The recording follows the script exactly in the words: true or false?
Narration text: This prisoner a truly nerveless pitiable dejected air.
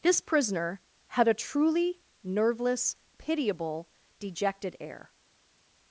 false